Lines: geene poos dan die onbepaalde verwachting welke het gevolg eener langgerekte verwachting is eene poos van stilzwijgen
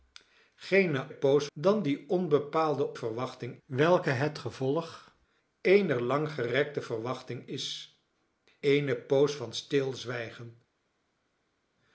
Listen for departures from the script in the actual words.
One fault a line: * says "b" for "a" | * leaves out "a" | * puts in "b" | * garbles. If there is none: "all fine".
all fine